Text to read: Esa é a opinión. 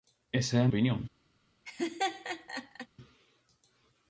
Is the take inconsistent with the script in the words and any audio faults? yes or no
yes